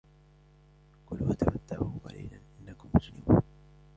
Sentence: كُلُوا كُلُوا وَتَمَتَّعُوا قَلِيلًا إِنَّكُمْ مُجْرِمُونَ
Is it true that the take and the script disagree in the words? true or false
true